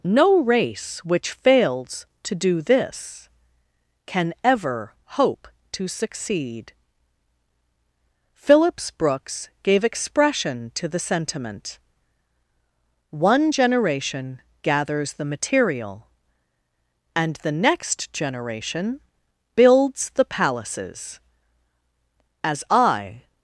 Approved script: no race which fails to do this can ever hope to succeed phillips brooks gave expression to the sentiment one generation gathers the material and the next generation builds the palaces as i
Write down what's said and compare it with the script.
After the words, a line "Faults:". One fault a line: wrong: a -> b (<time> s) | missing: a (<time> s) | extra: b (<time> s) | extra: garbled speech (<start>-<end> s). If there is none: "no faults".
no race which fails to do this can ever hope to succeed phillips brooks gave expression to the sentiment one generation gathers the material and the next generation builds the palaces as i
Faults:
no faults